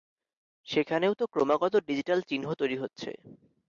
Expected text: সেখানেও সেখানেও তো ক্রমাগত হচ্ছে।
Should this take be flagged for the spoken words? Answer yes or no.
yes